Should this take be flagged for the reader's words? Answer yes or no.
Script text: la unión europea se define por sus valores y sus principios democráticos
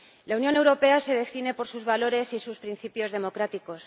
no